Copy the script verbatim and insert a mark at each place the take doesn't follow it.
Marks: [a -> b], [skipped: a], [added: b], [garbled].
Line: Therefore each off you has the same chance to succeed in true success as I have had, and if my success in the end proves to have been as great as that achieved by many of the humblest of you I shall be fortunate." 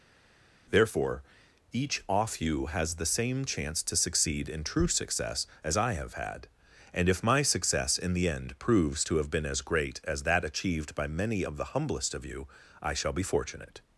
Therefore each off you has the same chance to succeed in true success as I have had, and if my success in the end proves to have been as great as that achieved by many of the humblest of you I shall be fortunate."